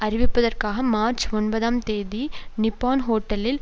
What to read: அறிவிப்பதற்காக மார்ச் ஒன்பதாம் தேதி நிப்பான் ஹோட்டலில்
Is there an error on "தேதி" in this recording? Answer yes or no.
no